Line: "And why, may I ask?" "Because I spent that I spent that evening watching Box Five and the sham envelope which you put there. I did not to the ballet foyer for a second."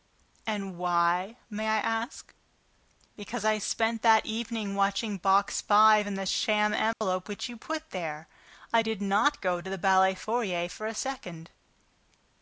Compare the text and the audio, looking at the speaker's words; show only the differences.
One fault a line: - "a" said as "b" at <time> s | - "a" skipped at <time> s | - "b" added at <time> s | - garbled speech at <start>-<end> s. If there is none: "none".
- "I spent that" skipped at 4.2 s
- "go" added at 9.4 s